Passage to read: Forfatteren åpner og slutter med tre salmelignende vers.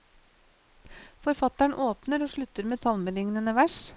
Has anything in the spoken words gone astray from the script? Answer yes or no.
yes